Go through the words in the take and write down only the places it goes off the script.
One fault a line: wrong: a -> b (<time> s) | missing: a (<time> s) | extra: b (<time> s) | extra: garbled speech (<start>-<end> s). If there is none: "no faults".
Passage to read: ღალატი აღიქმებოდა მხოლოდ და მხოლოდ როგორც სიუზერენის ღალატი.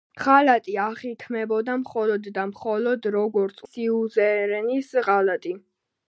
no faults